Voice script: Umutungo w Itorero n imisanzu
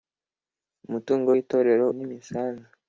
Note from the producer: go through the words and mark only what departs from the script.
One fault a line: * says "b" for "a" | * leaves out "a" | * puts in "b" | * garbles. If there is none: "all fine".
all fine